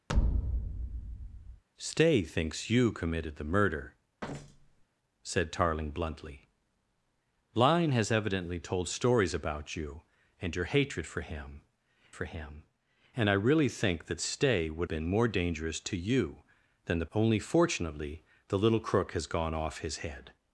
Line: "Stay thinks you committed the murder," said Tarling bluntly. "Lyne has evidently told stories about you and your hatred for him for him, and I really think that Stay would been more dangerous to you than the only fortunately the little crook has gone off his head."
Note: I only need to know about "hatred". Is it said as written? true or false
true